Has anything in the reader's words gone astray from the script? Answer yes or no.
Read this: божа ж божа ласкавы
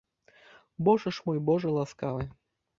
yes